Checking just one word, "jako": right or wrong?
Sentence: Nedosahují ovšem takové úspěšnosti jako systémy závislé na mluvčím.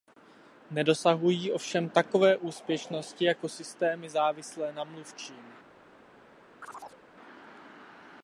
right